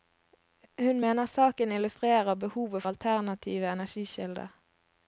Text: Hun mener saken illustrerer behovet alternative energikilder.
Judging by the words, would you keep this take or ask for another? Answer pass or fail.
pass